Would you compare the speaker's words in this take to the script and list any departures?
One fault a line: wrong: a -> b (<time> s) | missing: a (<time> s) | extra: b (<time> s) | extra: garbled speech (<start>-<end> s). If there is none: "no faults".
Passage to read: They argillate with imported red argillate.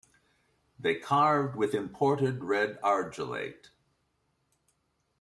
wrong: argillate -> carved (0.9 s)